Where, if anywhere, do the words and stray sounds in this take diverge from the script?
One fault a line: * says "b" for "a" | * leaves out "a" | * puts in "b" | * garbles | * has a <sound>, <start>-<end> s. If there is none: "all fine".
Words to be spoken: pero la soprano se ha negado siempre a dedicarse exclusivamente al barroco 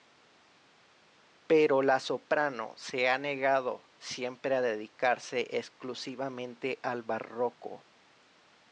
all fine